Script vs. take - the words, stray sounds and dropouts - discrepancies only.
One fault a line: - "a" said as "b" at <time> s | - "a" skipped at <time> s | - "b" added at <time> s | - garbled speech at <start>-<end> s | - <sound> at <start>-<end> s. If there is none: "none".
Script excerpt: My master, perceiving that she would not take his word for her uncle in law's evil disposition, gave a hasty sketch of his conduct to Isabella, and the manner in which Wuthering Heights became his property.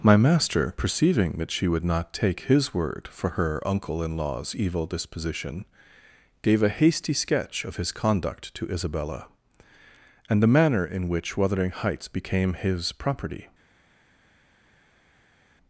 none